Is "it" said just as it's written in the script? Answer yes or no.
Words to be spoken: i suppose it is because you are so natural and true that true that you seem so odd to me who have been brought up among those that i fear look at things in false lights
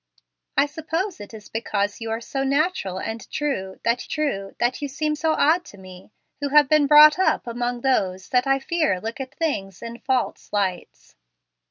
yes